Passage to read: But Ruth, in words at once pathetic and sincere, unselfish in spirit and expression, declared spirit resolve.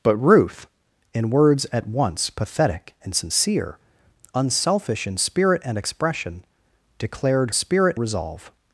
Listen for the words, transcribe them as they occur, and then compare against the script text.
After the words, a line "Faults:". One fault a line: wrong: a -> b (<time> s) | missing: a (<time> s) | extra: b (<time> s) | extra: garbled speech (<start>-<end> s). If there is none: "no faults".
But Ruth, in words at once pathetic and sincere, unselfish in spirit and expression, declared spirit resolve.
Faults:
no faults